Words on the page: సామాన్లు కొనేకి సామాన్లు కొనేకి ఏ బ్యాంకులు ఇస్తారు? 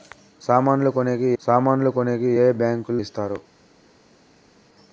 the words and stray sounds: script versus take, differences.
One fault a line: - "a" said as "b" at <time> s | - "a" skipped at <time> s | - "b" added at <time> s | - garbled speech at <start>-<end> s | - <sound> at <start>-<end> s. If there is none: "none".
none